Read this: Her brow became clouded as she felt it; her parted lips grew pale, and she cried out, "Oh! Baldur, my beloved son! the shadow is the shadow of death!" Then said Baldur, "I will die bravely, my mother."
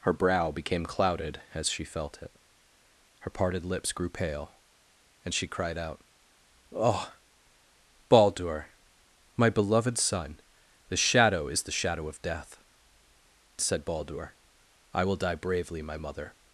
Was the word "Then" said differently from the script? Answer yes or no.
yes